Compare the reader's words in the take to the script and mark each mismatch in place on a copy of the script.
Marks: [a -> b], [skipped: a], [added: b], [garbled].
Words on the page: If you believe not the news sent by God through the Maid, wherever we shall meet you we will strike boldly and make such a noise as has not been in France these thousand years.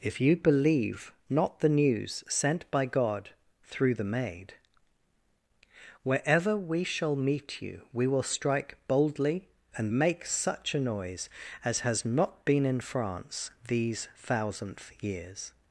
If you believe not the news sent by God through the Maid, wherever we shall meet you we will strike boldly and make such a noise as has not been in France these [thousand -> thousandth] years.